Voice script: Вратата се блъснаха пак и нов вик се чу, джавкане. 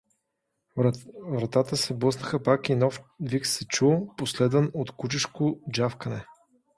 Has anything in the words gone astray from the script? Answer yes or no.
yes